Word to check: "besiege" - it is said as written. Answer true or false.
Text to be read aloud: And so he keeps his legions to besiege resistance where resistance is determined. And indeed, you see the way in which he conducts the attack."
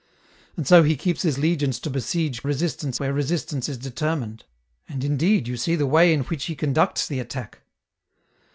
true